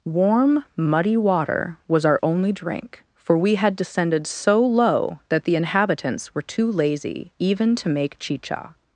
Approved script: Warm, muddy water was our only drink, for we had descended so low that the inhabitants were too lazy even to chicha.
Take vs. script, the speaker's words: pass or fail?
fail